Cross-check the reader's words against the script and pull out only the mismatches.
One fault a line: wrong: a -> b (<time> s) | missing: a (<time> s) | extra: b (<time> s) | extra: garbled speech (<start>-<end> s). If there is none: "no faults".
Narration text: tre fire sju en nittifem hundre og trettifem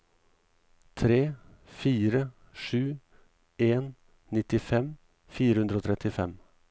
extra: fire (5.4 s)